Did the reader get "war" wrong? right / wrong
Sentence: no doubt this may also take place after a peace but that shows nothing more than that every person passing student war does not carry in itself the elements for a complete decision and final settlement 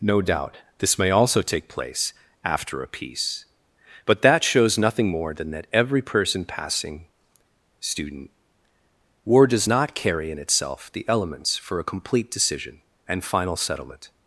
right